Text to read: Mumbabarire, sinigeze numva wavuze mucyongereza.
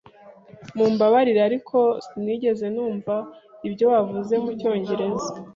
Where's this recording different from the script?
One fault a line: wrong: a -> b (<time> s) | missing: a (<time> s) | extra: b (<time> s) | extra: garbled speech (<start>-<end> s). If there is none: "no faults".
extra: ariko (1.5 s)
extra: ibyo (3.7 s)